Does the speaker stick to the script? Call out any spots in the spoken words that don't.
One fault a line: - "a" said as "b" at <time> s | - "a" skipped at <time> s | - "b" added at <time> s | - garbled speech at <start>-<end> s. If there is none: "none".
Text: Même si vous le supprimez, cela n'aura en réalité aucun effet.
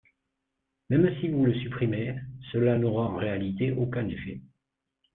none